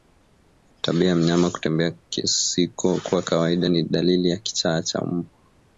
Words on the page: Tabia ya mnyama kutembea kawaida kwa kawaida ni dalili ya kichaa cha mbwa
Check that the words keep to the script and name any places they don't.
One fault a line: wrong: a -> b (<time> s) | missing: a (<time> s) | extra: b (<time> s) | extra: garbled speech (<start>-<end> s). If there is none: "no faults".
wrong: kawaida -> kusiko (1.9 s)